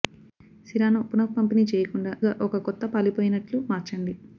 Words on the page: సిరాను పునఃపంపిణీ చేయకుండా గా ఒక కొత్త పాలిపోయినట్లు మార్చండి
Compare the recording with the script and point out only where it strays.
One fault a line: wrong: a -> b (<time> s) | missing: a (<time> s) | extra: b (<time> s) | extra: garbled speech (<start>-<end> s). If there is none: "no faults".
no faults